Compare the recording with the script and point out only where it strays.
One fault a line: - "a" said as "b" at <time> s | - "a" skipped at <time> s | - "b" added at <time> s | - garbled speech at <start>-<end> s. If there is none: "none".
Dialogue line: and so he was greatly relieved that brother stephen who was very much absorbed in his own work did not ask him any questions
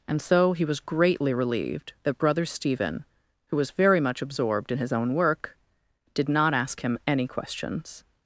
none